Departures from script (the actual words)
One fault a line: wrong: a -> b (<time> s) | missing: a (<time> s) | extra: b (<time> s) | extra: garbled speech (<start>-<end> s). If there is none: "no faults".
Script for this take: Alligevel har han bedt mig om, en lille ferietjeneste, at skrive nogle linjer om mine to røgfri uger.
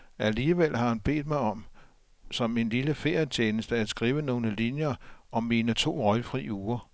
extra: som (2.3 s)